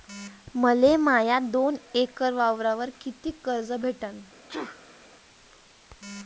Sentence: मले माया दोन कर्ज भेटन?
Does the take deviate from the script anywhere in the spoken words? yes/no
yes